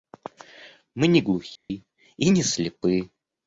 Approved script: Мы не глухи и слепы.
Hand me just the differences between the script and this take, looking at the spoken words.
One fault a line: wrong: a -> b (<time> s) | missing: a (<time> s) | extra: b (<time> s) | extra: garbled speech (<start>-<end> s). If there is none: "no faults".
extra: не (2.3 s)